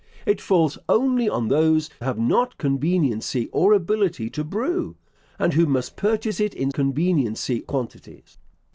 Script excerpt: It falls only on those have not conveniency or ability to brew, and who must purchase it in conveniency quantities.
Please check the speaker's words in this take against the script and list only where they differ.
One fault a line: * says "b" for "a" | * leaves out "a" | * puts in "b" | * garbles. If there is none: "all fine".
all fine